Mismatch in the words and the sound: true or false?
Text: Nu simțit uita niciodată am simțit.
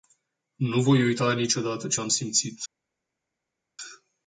true